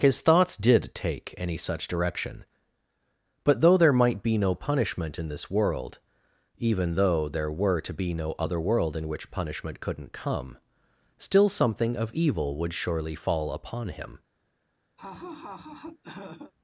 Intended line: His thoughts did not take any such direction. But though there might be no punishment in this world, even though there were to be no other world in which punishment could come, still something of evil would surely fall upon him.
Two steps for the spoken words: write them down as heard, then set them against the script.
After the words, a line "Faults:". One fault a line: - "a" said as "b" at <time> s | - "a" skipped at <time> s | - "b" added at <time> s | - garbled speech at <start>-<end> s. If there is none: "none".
His thoughts did take any such direction. But though there might be no punishment in this world, even though there were to be no other world in which punishment couldn't come, still something of evil would surely fall upon him.
Faults:
- "not" skipped at 0.9 s
- "could" said as "couldn't" at 9.8 s